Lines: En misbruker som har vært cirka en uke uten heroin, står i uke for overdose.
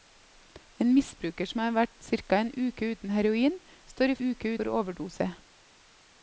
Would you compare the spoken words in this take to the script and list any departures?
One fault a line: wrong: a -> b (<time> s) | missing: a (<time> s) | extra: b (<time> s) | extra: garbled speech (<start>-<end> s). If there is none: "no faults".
no faults